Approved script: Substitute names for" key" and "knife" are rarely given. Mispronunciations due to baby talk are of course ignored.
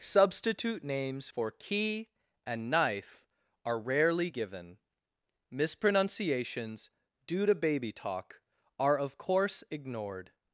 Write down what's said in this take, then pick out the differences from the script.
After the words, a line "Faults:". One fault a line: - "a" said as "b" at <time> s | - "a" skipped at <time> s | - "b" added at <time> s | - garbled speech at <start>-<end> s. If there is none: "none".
Substitute names for" key" and "knife" are rarely given. Mispronunciations due to baby talk are of course ignored.
Faults:
none